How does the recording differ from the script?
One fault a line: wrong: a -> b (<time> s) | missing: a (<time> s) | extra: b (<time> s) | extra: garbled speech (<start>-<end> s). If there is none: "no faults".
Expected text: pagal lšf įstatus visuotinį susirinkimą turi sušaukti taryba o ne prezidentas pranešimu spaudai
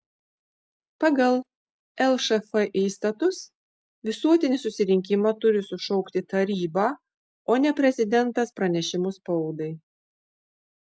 no faults